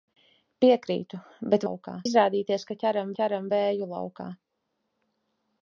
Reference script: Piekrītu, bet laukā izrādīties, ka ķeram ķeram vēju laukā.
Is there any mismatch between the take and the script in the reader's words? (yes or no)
no